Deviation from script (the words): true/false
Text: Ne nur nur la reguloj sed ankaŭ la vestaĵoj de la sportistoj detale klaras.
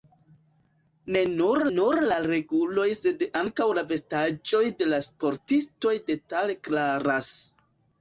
false